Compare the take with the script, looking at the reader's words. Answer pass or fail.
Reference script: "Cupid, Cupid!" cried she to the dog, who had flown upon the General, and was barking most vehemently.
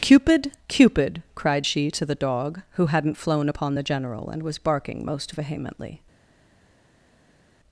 fail